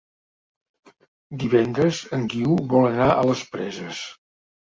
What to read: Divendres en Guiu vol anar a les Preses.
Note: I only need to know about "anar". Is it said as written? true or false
true